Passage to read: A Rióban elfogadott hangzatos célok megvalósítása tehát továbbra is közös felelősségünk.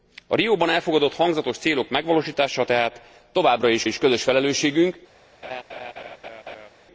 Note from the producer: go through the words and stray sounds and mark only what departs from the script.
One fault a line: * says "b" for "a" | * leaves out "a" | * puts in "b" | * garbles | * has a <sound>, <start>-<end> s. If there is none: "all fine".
* puts in "is"
* has a laugh, 5.4-6.7 s